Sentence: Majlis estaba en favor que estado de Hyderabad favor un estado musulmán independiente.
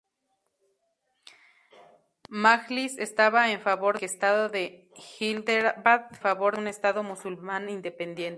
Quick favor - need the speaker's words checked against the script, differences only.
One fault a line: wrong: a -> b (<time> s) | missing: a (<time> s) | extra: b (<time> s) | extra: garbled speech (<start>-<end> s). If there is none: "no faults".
no faults